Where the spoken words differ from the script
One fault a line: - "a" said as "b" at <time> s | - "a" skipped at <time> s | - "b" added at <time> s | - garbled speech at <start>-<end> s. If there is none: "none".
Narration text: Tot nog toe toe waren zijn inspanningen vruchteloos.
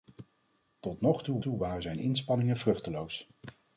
none